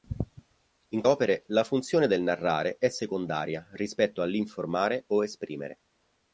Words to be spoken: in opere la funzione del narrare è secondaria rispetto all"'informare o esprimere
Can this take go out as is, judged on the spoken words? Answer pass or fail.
pass